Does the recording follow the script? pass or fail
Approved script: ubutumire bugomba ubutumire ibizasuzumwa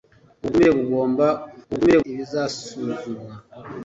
pass